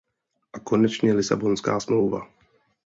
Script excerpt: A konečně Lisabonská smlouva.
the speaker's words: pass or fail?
pass